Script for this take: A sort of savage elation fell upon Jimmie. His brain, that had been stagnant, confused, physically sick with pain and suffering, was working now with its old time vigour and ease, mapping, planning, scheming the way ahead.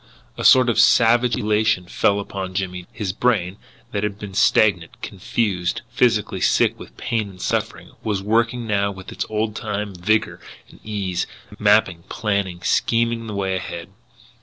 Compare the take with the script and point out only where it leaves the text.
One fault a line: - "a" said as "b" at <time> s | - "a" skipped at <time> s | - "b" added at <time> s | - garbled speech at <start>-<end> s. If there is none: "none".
none